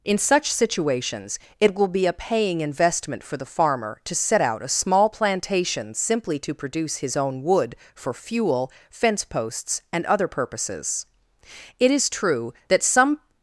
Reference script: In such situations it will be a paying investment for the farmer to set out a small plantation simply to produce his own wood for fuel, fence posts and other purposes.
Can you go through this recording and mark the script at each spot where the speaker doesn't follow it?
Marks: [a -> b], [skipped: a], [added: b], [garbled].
In such situations it will be a paying investment for the farmer to set out a small plantation simply to produce his own wood for fuel, fence posts and other purposes. [added: It is true that some]